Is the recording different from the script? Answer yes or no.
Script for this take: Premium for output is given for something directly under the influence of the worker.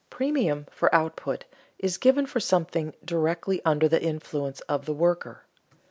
no